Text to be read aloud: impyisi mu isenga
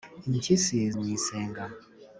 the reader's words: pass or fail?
pass